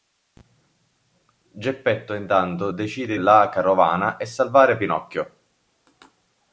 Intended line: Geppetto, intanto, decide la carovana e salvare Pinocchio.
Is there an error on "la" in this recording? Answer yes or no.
no